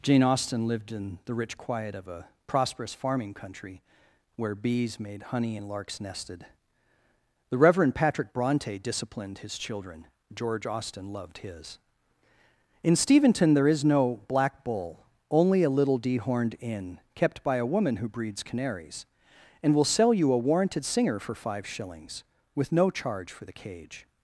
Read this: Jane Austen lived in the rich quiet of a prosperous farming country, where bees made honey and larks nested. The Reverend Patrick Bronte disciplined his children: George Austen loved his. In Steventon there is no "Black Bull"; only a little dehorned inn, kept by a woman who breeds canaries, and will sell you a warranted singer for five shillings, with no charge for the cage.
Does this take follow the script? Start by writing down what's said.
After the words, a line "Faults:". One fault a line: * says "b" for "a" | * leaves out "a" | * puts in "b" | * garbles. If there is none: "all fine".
Jane Austen lived in the rich quiet of a prosperous farming country, where bees made honey and larks nested. The Reverend Patrick Bronte disciplined his children: George Austen loved his. In Steventon there is no "Black Bull"; only a little dehorned inn, kept by a woman who breeds canaries, and will sell you a warranted singer for five shillings, with no charge for the cage.
Faults:
all fine